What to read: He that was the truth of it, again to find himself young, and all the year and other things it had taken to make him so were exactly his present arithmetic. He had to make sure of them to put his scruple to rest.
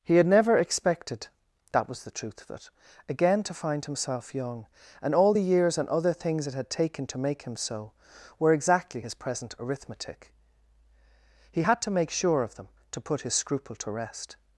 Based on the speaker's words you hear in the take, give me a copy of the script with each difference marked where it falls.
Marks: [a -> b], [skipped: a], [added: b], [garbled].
He [added: had never expected] that was the truth of it, again to find himself young, and all the [year -> years] and other things it had taken to make him so were exactly his present arithmetic. He had to make sure of them to put his scruple to rest.